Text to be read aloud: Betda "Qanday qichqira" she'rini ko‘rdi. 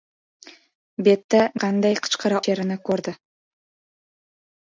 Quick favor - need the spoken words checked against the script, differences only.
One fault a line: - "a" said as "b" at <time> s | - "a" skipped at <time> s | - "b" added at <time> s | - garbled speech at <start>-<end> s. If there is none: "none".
none